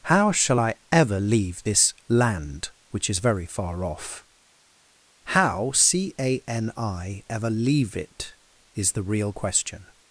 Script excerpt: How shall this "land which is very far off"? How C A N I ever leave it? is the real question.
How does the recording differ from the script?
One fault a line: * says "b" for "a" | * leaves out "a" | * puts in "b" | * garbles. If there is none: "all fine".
* puts in "I ever leave"